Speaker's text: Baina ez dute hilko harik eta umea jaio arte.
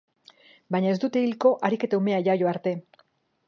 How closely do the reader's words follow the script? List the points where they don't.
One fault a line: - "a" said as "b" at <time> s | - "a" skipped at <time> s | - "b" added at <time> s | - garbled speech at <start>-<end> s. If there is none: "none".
none